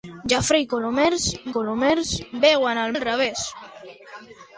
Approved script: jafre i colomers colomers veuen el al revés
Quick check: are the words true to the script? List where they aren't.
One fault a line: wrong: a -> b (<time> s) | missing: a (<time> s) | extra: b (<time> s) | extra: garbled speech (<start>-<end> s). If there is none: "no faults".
no faults